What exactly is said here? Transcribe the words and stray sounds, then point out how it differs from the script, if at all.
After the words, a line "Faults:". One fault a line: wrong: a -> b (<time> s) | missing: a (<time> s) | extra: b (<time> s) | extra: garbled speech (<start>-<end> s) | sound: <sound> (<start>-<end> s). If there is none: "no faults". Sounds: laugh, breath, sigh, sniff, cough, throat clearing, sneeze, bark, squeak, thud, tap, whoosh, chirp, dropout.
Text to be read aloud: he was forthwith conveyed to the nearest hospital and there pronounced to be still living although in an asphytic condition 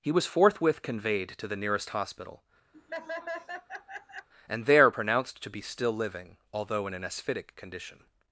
he was forthwith conveyed to the nearest hospital and there pronounced to be still living although in an asphytic condition
Faults:
sound: laugh (2.7-4.3 s)